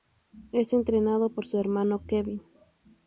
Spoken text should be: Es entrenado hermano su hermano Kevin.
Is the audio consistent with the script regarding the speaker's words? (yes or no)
no